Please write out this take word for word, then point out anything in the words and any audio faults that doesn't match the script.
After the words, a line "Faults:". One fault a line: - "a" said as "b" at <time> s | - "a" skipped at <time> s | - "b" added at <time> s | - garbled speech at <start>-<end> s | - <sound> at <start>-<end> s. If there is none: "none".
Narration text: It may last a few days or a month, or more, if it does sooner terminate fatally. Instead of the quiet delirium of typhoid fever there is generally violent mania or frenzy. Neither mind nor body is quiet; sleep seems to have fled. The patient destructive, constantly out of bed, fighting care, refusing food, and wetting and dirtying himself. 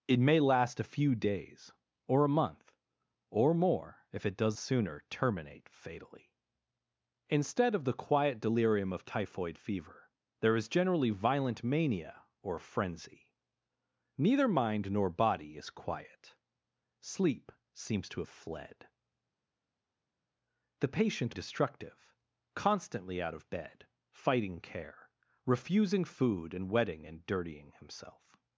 It may last a few days or a month, or more, if it does sooner terminate fatally. Instead of the quiet delirium of typhoid fever there is generally violent mania or frenzy. Neither mind nor body is quiet; sleep seems to have fled. The patient destructive, constantly out of bed, fighting care, refusing food, and wetting and dirtying himself.
Faults:
none